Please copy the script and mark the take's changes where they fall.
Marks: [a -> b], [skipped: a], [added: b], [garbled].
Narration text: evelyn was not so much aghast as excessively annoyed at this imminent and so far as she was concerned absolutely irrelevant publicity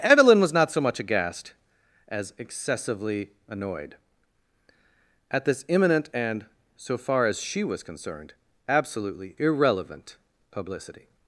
evelyn was not so much aghast as excessively annoyed at this imminent and so far as she was concerned absolutely irrelevant publicity